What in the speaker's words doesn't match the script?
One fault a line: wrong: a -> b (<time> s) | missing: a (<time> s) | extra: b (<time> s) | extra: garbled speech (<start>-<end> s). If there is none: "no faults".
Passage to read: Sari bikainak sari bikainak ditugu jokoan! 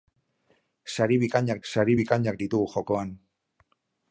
no faults